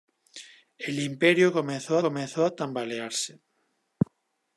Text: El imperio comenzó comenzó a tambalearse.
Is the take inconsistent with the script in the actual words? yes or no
no